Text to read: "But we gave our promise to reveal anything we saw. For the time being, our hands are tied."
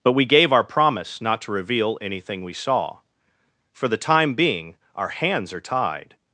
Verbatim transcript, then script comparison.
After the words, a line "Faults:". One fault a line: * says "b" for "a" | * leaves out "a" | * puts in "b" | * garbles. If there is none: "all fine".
"But we gave our promise not to reveal anything we saw. For the time being, our hands are tied."
Faults:
* puts in "not"